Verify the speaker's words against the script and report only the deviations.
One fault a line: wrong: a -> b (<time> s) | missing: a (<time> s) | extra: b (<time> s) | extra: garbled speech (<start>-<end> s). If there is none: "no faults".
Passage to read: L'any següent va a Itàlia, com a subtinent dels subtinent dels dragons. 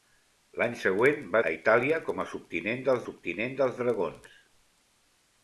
no faults